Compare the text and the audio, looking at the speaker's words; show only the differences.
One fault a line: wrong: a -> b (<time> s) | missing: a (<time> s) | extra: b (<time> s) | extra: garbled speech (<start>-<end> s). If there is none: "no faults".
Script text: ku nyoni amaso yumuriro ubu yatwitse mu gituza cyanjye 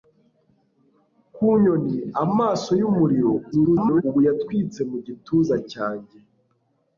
extra: garbled speech (3.5-4.0 s)